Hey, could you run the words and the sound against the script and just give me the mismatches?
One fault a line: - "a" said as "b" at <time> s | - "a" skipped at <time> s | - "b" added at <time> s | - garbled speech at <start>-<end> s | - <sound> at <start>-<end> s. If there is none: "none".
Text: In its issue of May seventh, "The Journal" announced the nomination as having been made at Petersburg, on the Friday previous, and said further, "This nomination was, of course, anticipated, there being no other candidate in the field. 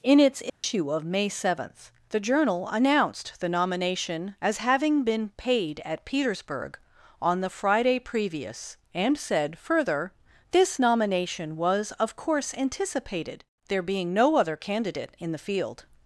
- dropout at 0.5-0.6 s
- "made" said as "paid" at 5.4 s